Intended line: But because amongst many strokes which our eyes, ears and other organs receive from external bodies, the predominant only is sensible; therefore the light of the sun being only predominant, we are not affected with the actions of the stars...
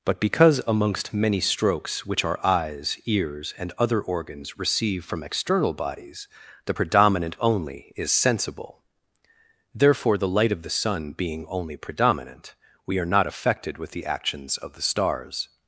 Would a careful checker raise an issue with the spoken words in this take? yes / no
no